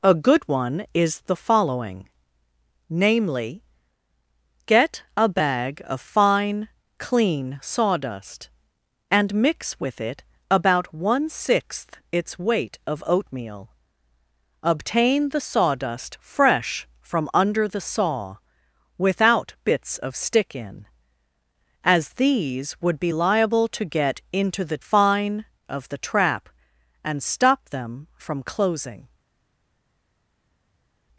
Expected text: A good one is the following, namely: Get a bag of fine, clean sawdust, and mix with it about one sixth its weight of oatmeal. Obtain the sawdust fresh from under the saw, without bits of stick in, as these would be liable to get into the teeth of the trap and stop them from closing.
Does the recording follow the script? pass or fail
fail